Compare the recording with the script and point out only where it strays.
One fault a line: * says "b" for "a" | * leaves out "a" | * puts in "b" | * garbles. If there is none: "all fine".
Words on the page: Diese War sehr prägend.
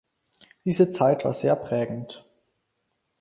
* puts in "Zeit"